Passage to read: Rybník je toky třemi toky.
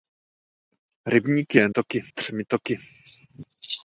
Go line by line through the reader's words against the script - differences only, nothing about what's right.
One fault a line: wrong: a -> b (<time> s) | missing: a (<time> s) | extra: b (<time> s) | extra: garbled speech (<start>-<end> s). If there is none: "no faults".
no faults